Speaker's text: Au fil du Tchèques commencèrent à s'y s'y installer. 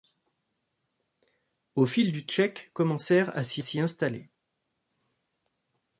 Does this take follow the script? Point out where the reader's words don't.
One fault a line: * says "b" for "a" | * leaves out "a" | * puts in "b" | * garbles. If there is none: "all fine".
all fine